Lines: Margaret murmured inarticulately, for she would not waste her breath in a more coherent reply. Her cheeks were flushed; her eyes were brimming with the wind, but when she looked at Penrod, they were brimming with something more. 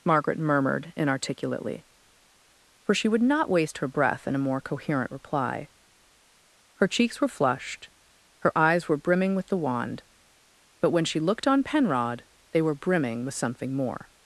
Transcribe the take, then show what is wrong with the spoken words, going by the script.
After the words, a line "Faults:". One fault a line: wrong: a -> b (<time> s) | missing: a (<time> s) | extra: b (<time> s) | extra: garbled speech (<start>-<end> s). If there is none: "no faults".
Margaret murmured inarticulately, for she would not waste her breath in a more coherent reply. Her cheeks were flushed; her eyes were brimming with the wand, but when she looked on Penrod, they were brimming with something more.
Faults:
wrong: wind -> wand (9.6 s)
wrong: at -> on (11.5 s)